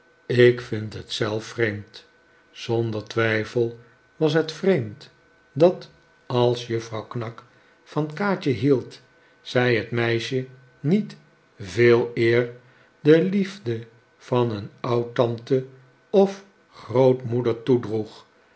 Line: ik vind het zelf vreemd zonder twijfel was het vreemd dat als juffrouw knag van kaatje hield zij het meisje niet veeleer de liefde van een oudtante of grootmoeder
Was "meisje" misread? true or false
false